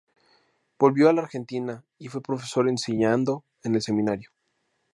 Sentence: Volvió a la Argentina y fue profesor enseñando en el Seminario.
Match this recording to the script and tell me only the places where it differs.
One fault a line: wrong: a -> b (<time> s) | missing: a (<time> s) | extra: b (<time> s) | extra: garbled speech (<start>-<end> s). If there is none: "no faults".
no faults